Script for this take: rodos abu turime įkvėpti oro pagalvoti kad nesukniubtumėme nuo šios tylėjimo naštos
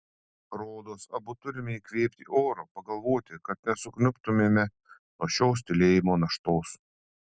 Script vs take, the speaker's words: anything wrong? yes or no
no